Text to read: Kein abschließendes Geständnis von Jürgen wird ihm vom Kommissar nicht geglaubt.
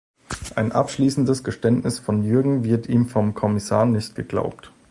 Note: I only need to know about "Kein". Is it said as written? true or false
false